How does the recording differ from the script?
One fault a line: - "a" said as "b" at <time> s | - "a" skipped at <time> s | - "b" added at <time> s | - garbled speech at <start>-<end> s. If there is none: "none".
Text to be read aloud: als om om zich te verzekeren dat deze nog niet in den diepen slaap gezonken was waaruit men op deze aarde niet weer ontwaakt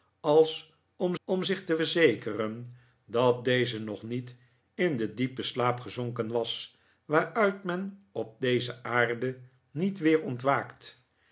none